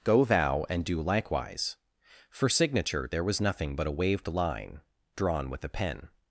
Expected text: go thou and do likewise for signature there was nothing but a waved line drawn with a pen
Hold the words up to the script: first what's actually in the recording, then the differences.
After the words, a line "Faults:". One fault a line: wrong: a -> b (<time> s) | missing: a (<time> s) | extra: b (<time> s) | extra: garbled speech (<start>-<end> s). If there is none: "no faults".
go thou and do likewise for signature there was nothing but a waved line drawn with a pen
Faults:
no faults